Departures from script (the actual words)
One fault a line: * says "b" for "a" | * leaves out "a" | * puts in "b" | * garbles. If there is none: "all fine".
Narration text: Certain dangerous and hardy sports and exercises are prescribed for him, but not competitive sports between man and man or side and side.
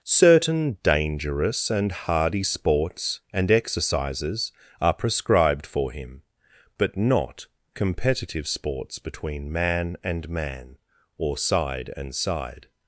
all fine